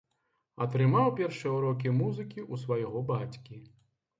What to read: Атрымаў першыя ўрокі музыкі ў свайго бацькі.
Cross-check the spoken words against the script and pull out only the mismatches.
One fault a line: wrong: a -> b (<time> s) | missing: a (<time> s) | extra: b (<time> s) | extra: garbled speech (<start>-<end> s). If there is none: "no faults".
no faults